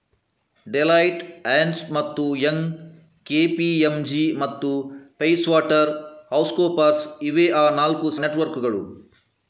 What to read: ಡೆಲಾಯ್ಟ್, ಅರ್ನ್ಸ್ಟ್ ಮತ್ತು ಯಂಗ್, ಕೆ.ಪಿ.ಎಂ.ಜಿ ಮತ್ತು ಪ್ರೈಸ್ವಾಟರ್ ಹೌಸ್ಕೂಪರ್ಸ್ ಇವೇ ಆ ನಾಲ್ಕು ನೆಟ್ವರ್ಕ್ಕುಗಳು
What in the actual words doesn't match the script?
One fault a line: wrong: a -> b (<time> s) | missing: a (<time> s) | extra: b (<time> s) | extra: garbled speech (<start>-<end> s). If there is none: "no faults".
no faults